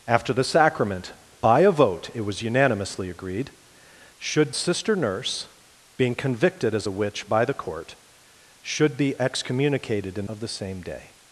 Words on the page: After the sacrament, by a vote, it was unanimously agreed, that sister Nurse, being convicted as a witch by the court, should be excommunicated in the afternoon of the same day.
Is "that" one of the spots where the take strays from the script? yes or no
yes